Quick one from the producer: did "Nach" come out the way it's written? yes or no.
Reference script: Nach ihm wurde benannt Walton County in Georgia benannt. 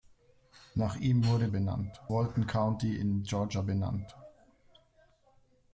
yes